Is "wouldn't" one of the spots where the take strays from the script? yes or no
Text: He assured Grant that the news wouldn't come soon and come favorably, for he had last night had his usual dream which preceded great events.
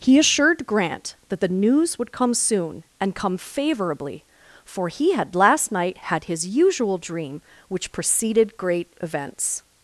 yes